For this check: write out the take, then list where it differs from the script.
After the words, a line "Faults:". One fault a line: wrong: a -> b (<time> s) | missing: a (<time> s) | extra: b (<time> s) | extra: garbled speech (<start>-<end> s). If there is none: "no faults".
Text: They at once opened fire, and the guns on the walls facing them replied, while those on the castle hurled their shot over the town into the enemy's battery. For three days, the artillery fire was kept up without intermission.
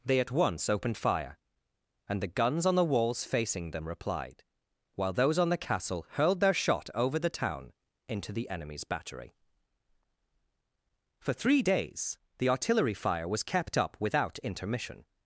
They at once opened fire, and the guns on the walls facing them replied, while those on the castle hurled their shot over the town into the enemy's battery. For three days, the artillery fire was kept up without intermission.
Faults:
no faults